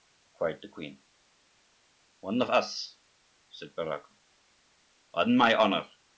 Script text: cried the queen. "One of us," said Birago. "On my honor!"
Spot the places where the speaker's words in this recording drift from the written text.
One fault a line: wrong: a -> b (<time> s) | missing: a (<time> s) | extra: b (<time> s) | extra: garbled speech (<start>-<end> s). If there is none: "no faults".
no faults